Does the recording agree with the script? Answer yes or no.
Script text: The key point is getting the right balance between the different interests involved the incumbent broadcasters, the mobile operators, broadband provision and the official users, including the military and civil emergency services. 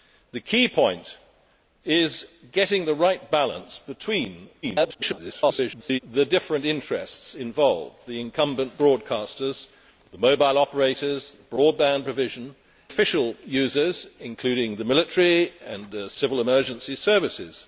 no